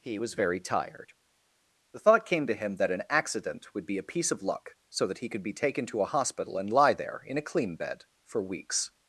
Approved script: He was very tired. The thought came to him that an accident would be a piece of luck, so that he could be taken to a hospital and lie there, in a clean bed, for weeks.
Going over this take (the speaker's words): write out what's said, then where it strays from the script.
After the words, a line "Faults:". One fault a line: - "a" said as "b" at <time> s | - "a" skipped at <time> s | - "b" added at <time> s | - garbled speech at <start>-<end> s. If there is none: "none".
He was very tired. The thought came to him that an accident would be a piece of luck, so that he could be taken to a hospital and lie there, in a clean bed, for weeks.
Faults:
none